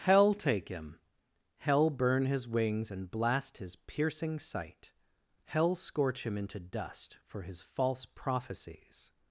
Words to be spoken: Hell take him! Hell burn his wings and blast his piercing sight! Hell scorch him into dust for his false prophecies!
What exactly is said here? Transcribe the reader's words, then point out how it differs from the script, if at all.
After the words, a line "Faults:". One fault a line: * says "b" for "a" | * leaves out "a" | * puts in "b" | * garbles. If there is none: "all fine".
Hell take him! Hell burn his wings and blast his piercing sight! Hell scorch him into dust for his false prophecies!
Faults:
all fine